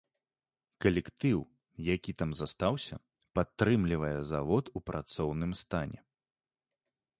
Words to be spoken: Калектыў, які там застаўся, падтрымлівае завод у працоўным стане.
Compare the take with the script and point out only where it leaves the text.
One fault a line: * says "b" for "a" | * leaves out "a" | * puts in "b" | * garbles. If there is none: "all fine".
all fine